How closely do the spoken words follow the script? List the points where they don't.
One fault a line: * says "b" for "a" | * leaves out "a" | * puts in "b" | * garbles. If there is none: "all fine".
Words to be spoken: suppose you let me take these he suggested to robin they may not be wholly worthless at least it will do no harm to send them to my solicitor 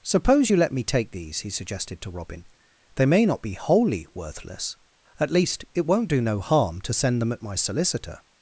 * says "won't" for "will"
* says "at" for "to"